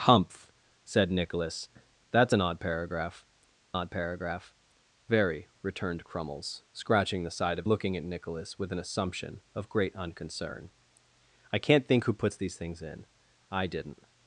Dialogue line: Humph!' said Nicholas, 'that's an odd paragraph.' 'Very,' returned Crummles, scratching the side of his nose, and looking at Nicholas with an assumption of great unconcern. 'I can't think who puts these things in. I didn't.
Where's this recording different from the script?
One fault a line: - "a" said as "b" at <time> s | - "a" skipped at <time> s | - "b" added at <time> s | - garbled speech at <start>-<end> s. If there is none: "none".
- "odd paragraph" added at 3.7 s
- "his nose and" skipped at 7.7 s